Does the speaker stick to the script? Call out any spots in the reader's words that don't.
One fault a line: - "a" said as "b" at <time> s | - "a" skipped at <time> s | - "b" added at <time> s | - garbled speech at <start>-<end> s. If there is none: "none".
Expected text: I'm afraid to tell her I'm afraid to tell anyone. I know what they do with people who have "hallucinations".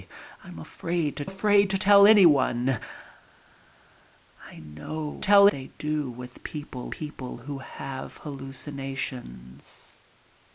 - "tell her I'm" skipped at 1.2 s
- "what" said as "tell" at 5.2 s
- "people" added at 6.9 s